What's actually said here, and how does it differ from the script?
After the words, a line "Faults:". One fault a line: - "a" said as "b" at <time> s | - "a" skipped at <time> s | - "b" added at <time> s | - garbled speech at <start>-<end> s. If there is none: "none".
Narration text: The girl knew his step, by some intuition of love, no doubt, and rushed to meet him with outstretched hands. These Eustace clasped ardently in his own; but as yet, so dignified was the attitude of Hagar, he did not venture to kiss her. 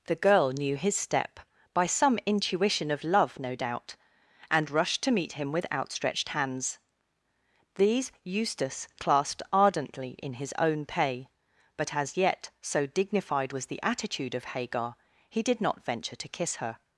The girl knew his step, by some intuition of love, no doubt, and rushed to meet him with outstretched hands. These Eustace clasped ardently in his own; pay but as yet, so dignified was the attitude of Hagar, he did not venture to kiss her.
Faults:
- "pay" added at 10.8 s